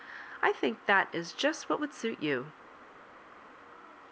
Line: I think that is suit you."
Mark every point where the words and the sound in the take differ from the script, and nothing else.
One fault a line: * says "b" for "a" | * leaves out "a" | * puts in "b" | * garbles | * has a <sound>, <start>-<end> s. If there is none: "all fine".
* puts in "just what would"